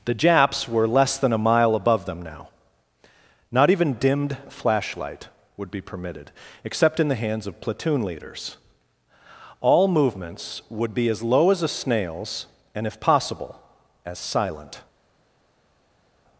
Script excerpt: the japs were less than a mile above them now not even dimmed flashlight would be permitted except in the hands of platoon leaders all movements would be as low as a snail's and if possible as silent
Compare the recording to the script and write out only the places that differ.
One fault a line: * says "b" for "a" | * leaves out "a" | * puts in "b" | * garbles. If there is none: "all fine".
all fine